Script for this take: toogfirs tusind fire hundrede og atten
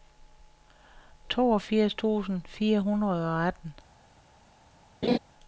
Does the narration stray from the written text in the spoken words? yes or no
no